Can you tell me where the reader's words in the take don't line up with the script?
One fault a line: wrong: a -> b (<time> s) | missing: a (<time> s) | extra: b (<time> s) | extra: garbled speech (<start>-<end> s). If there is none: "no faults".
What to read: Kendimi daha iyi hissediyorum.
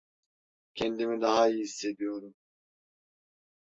no faults